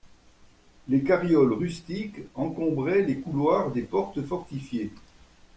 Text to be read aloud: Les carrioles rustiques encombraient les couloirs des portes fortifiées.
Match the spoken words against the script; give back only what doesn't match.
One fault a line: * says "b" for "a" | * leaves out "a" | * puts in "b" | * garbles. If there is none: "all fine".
all fine